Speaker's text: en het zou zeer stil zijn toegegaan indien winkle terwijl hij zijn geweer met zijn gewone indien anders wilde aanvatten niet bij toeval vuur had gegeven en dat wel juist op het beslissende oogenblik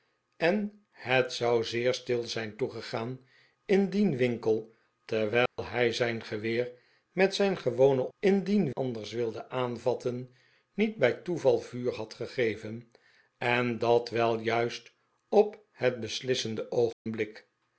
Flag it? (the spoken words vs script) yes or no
no